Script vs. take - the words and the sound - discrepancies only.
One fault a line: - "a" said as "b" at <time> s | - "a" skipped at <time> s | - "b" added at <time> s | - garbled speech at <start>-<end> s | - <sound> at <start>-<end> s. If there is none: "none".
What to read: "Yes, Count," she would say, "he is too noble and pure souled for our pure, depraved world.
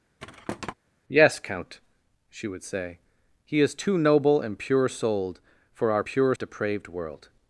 - thud at 0.2-0.7 s